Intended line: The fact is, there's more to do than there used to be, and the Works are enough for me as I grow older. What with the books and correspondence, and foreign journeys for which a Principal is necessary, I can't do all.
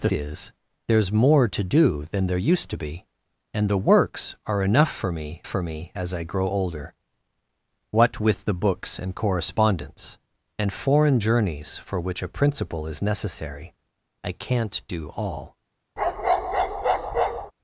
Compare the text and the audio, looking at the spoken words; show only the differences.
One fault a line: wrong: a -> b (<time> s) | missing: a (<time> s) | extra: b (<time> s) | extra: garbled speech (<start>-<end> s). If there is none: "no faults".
missing: fact (0.1 s)
extra: for me (5.4 s)